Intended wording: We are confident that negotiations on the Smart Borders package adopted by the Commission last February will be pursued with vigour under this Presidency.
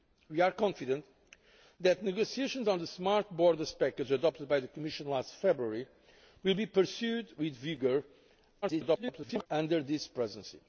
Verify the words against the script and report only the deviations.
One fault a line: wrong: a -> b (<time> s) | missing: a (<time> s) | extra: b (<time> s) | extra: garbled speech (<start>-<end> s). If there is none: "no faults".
extra: garbled speech (8.6-9.5 s)